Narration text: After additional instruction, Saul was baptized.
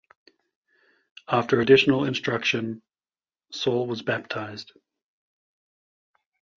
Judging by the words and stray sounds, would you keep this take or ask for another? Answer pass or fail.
pass